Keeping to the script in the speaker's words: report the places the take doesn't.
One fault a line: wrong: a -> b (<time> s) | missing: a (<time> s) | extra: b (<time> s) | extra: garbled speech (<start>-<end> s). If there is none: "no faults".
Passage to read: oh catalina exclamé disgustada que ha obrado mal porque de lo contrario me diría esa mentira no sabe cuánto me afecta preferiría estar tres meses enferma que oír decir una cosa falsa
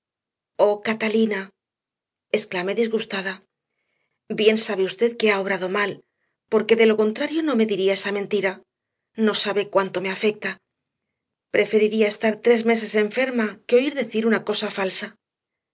extra: bien sabe usted (4.4 s)
extra: no (7.4 s)